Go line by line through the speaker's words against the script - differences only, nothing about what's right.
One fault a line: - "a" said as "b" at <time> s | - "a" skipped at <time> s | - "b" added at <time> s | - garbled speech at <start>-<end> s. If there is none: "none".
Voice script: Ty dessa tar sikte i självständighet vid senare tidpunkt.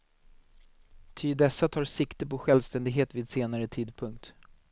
- "i" said as "på" at 2.2 s